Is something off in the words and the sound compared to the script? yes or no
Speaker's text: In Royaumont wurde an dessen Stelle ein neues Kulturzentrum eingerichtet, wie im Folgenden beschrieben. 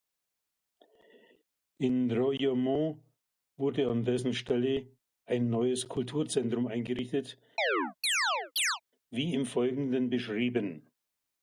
yes